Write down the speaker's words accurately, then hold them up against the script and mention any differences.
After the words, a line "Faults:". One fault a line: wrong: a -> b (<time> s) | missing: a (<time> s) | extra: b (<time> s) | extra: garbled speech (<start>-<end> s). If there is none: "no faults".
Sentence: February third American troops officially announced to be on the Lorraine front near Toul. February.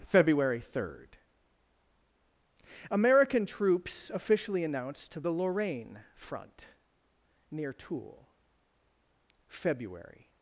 February third American troops officially announced to the Lorraine front near Toul. February.
Faults:
missing: be on (5.2 s)